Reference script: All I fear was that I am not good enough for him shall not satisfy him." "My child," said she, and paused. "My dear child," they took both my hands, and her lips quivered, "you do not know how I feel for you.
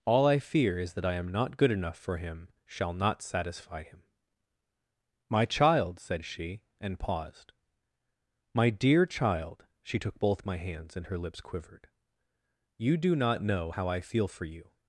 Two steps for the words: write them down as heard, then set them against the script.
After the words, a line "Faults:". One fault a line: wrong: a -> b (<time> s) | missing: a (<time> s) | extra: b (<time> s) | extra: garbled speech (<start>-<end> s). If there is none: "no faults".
All I fear is that I am not good enough for him shall not satisfy him." "My child," said she, and paused. "My dear child," she took both my hands, and her lips quivered, "you do not know how I feel for you.
Faults:
wrong: was -> is (0.8 s)
wrong: they -> she (9.8 s)